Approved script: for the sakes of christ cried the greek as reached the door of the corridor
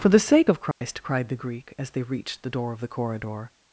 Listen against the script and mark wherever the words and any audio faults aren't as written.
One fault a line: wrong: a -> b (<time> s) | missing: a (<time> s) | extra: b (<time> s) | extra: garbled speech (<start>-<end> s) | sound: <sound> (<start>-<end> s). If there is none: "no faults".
wrong: sakes -> sake (0.2 s)
sound: dropout (0.7-0.8 s)
extra: they (1.9 s)